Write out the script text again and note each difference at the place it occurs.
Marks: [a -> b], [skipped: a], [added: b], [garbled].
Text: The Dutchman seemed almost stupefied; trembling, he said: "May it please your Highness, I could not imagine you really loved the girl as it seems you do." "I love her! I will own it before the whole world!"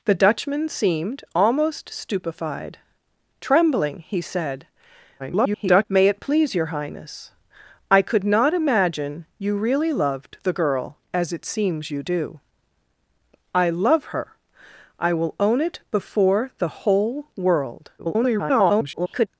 The Dutchman seemed almost stupefied; trembling, he said: [garbled] "May it please your Highness, I could not imagine you really loved the girl as it seems you do." "I love her! I will own it before the whole world!" [garbled]